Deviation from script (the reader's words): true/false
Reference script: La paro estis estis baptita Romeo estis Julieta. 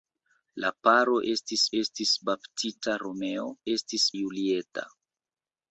false